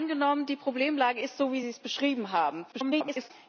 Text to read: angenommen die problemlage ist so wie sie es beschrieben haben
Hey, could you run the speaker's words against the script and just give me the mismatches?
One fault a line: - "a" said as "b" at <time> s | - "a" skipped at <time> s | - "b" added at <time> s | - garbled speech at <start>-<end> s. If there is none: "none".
- garbled speech at 2.7-3.3 s